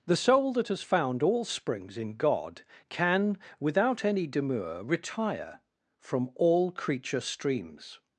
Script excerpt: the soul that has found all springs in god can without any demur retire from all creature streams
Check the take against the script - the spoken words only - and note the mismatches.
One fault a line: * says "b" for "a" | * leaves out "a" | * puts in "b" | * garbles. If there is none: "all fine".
all fine